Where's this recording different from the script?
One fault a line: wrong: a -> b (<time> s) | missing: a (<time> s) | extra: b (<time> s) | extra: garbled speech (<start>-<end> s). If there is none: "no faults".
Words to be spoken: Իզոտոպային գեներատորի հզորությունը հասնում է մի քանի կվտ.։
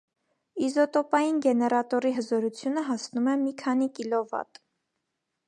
no faults